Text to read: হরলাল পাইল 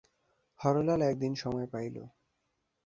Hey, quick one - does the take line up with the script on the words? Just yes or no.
no